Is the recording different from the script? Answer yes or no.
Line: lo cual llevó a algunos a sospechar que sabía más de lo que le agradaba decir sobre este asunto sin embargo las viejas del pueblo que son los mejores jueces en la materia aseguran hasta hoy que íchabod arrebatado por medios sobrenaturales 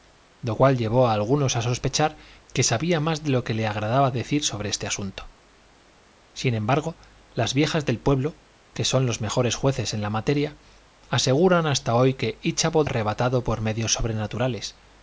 no